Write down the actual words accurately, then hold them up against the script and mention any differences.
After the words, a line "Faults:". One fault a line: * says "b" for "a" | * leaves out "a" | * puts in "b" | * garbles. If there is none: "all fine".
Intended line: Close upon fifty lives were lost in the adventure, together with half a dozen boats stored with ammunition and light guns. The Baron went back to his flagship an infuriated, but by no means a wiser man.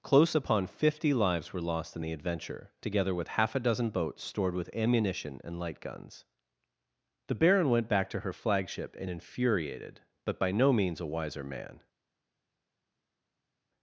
Close upon fifty lives were lost in the adventure, together with half a dozen boats stored with ammunition and light guns. The Baron went back to her flagship an infuriated, but by no means a wiser man.
Faults:
* says "her" for "his"